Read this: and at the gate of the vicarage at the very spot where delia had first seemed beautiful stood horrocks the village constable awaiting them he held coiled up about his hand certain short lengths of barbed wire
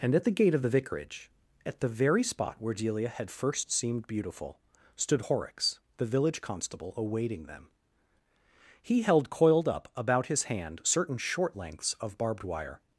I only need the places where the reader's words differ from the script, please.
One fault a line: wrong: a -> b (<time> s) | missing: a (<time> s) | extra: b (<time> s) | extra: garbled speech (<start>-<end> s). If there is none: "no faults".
no faults